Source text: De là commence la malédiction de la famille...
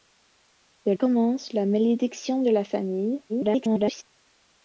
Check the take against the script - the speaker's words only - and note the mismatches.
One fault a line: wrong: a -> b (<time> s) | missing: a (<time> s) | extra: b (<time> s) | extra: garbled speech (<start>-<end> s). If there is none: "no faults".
missing: là (0.9 s)
extra: garbled speech (3.3-4.0 s)